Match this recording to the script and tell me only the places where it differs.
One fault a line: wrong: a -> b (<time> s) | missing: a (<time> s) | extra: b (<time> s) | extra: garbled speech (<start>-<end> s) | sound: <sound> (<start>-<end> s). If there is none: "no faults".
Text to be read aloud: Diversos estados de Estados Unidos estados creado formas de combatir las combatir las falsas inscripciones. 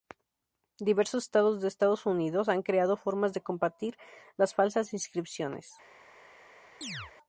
wrong: estados -> han (2.5 s)
missing: combatir las (4.5 s)
sound: chirp (6.8-7.1 s)